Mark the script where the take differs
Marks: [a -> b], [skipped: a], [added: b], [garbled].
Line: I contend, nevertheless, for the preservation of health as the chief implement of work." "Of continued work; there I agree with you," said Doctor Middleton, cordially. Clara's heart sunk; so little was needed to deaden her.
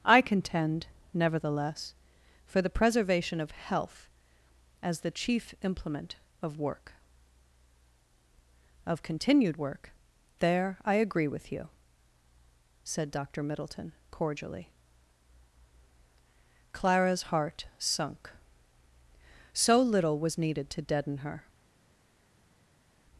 I contend, nevertheless, for the preservation of health as the chief implement of work." "Of continued work; there I agree with you," said Doctor Middleton, cordially. Clara's heart sunk; so little was needed to deaden her.